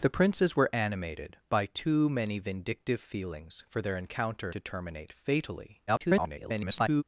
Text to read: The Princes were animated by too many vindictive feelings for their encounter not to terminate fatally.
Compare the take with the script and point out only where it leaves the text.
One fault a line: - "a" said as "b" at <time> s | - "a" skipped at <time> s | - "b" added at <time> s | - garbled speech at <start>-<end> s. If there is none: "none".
- "not" skipped at 4.5 s
- garbled speech at 5.9-7.0 s